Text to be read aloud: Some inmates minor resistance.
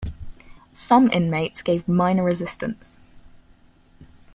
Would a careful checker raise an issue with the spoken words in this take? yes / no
yes